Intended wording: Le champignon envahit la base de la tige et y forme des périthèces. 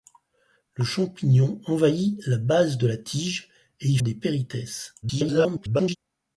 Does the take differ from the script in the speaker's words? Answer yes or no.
yes